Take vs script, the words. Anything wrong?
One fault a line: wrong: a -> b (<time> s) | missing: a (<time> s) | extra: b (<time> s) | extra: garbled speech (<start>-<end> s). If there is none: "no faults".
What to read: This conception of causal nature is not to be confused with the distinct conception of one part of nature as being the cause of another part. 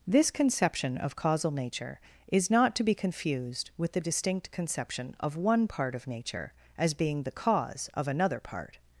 no faults